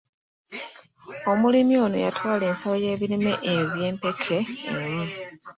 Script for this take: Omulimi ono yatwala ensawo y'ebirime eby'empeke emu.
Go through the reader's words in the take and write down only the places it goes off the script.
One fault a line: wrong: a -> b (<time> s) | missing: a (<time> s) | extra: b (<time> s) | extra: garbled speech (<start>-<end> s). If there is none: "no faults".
no faults